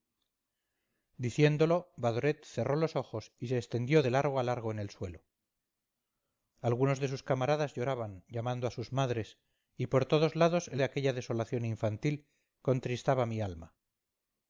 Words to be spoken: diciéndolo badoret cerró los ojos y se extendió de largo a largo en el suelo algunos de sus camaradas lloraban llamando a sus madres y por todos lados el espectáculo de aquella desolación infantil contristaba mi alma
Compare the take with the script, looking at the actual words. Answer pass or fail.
fail